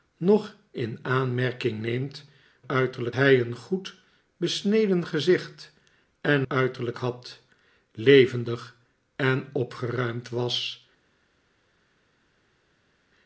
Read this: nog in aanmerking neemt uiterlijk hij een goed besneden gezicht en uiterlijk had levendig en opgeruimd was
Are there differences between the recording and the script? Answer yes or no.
no